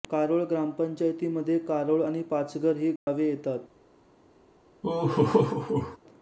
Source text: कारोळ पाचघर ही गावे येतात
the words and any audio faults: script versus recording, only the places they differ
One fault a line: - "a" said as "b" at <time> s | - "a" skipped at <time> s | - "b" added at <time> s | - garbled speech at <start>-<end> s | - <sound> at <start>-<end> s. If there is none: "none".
- "ग्रामपंचायतीमध्ये कारोळ आणि" added at 0.4 s
- dropout at 3.0-3.1 s
- laugh at 4.8-6.0 s